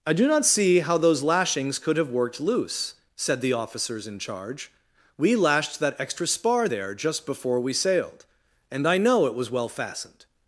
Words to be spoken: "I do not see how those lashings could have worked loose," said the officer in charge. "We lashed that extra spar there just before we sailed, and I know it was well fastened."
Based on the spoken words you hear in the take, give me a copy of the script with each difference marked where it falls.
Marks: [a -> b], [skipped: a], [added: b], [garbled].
"I do not see how those lashings could have worked loose," said the [officer -> officers] in charge. "We lashed that extra spar there just before we sailed, and I know it was well fastened."